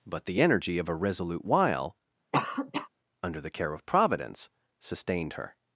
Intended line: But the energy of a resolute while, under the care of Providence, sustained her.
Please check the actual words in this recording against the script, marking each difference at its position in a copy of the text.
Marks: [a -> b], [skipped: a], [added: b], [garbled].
But the energy of a resolute while, under the care of Providence, sustained her.